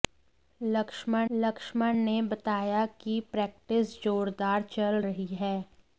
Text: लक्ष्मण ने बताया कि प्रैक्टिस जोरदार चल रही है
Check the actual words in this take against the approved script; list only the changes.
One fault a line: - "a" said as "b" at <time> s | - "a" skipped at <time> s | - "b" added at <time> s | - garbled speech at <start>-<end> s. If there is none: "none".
- "लक्ष्मण" added at 1.3 s